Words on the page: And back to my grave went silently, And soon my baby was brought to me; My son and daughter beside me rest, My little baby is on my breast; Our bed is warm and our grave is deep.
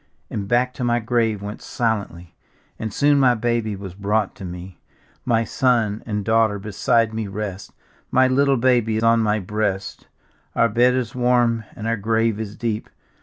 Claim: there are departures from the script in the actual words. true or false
true